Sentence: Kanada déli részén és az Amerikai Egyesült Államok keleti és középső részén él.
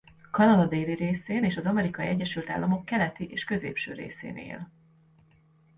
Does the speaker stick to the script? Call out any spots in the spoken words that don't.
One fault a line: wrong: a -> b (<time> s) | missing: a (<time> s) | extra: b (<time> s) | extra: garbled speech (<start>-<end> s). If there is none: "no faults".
no faults